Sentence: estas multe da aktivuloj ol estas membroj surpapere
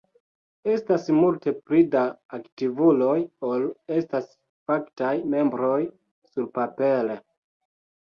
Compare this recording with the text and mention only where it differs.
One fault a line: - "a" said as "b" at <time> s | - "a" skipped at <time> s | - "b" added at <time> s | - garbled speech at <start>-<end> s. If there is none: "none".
- "pli" added at 1.6 s
- "faktaj" added at 4.7 s